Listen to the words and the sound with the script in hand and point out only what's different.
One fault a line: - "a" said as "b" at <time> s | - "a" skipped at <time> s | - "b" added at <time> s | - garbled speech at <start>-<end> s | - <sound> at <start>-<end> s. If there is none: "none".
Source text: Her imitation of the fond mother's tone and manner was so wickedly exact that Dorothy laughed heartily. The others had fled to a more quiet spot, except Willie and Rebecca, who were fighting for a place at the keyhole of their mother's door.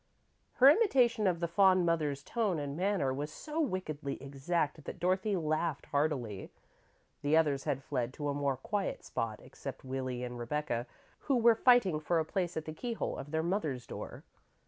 none